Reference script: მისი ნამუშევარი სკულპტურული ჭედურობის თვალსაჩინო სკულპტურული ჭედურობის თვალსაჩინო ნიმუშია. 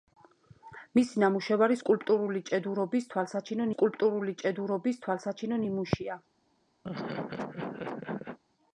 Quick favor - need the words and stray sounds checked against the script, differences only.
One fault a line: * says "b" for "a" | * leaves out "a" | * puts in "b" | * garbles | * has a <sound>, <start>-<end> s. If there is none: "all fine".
* has a laugh, 6.8-8.4 s